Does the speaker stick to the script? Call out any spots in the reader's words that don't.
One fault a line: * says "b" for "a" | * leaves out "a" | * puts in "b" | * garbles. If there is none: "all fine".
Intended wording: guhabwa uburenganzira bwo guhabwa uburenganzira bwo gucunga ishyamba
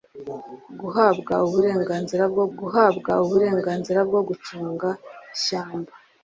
all fine